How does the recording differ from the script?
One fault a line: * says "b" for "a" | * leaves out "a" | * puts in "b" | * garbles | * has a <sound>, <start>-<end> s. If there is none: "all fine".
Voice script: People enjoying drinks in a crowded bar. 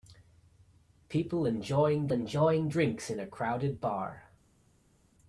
* puts in "enjoying"